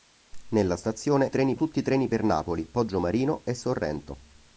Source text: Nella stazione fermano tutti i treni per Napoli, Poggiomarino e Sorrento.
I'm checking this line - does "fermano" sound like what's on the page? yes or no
no